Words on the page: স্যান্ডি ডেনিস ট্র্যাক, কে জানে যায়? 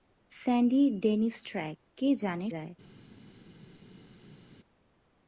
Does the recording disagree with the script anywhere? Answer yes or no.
no